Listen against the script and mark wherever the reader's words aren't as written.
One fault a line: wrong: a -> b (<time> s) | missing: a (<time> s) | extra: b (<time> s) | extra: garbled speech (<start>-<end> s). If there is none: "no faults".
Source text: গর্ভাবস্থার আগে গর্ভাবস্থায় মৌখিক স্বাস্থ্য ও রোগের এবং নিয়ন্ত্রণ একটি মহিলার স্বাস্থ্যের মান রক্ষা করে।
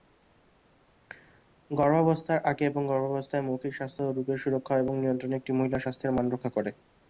extra: এবং (2.7 s)
extra: সুরক্ষা (4.4 s)